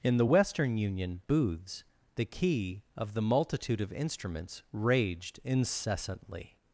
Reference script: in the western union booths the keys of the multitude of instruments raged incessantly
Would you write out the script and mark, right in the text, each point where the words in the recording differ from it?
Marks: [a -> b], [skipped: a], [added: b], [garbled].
in the western union booths the [keys -> key] of the multitude of instruments raged incessantly